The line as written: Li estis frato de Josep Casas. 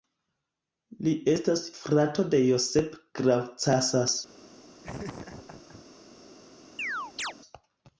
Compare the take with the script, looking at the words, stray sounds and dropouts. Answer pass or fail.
fail